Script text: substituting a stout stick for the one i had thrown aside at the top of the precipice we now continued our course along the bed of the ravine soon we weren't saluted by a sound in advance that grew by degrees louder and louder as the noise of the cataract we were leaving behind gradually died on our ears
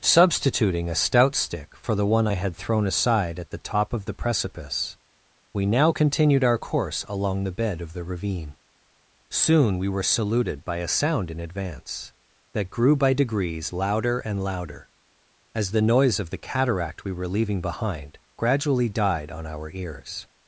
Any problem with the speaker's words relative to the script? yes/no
yes